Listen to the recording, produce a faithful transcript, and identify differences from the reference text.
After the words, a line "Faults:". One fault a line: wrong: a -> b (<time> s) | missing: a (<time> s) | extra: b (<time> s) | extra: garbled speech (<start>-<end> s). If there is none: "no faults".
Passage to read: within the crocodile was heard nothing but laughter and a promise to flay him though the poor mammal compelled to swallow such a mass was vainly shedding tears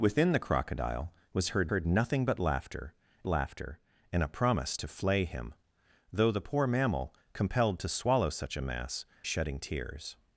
within the crocodile was heard heard nothing but laughter laughter and a promise to flay him though the poor mammal compelled to swallow such a mass shedding tears
Faults:
extra: heard (1.7 s)
extra: laughter (3.3 s)
missing: was vainly (9.1 s)